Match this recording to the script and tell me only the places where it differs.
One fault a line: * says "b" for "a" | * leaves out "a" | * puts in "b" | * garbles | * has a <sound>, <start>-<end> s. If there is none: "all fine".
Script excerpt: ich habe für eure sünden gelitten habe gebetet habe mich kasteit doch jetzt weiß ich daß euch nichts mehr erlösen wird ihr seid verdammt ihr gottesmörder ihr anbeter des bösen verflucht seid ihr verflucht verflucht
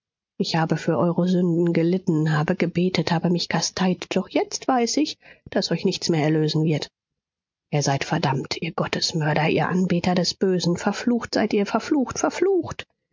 all fine